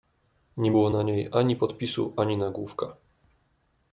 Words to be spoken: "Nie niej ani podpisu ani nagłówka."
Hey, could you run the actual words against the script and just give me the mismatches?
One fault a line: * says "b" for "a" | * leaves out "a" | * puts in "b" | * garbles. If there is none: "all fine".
* puts in "było na"